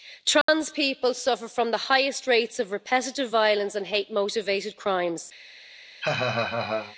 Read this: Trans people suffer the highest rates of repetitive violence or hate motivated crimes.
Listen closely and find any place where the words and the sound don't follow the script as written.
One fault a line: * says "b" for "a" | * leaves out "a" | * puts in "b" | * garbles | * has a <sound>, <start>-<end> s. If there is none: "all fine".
* has a dropout, 0.4-0.5 s
* puts in "from"
* says "and" for "or"
* has a laugh, 6.0-7.0 s